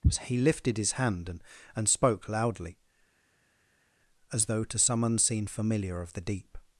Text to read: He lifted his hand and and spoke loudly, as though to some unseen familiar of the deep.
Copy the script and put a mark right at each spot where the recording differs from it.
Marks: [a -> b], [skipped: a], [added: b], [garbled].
He lifted his hand and and spoke loudly, as though to some unseen familiar of the deep.